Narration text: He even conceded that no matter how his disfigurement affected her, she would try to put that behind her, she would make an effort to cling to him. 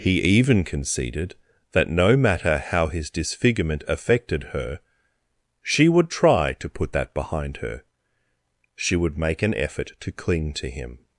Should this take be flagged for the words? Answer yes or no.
no